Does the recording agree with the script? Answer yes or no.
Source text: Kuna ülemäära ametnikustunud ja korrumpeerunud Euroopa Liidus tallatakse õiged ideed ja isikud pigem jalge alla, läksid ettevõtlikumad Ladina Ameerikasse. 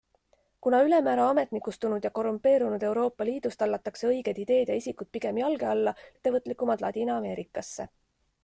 no